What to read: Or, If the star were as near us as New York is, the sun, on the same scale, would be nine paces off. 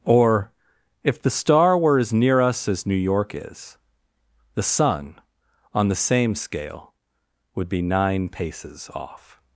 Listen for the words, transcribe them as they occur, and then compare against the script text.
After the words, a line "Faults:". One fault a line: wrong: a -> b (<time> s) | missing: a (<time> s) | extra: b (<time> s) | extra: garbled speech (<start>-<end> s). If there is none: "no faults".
Or, If the star were as near us as New York is, the sun, on the same scale, would be nine paces off.
Faults:
no faults